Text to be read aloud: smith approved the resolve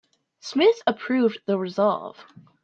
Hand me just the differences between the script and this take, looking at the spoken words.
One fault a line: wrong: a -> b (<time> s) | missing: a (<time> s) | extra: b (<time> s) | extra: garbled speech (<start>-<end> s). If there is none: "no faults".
no faults